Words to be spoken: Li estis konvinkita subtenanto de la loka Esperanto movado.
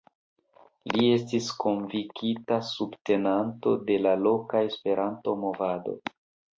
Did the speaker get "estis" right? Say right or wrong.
right